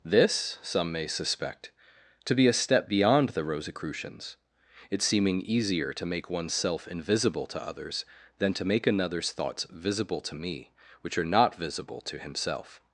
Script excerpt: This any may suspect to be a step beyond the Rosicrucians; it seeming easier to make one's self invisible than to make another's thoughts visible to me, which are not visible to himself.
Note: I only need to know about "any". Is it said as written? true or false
false